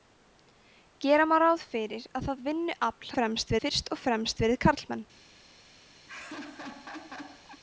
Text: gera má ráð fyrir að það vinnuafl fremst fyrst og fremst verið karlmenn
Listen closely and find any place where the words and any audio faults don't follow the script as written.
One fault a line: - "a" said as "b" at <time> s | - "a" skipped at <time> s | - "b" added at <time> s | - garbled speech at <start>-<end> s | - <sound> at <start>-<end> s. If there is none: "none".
- laugh at 6.1-7.6 s